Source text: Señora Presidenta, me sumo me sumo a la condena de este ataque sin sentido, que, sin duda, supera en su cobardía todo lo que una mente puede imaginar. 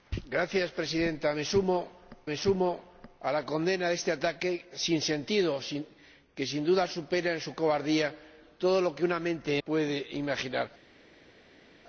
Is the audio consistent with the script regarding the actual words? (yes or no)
yes